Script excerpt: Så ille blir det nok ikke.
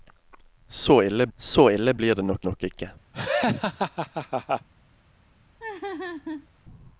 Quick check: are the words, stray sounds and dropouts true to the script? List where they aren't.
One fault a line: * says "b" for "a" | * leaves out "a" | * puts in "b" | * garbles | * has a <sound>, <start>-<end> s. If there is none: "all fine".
* puts in "så ille"
* puts in "nok"
* has a laugh, 3.1-4.7 s
* has a laugh, 5.6-6.5 s